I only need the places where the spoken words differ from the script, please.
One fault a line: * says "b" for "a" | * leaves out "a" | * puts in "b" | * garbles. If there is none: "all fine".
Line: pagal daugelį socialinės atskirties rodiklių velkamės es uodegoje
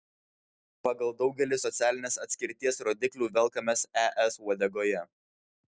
all fine